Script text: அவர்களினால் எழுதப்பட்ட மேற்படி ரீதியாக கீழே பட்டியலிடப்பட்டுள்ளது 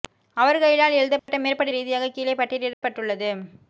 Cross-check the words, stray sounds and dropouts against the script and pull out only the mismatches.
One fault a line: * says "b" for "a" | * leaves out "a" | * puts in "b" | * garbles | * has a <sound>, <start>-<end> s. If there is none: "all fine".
* has a dropout, 1.2-1.3 s
* has a dropout, 2.7-2.8 s